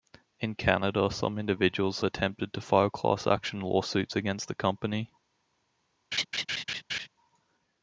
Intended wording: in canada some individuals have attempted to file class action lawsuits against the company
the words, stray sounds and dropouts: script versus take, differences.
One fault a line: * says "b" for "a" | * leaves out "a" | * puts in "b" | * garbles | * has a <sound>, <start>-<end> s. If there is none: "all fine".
* leaves out "have"
* has a laugh, 6.1-7.1 s